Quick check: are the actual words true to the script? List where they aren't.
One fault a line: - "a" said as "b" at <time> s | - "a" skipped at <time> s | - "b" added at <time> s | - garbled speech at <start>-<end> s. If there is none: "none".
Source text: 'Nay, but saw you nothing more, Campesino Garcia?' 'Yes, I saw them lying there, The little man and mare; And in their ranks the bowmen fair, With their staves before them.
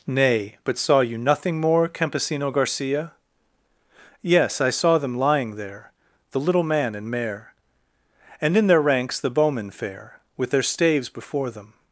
none